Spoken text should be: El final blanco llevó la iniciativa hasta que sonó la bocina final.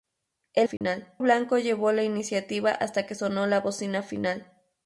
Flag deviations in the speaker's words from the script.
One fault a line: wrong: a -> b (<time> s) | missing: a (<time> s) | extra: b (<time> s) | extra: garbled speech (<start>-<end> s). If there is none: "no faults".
no faults